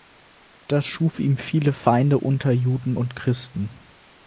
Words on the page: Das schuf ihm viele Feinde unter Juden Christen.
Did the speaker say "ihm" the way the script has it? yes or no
yes